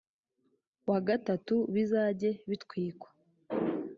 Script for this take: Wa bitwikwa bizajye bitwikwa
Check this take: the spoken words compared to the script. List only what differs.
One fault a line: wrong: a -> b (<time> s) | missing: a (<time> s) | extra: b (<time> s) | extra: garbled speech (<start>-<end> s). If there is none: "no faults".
wrong: bitwikwa -> gatatu (1.1 s)